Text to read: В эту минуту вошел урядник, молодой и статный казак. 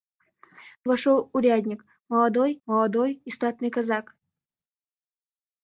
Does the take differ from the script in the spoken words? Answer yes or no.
yes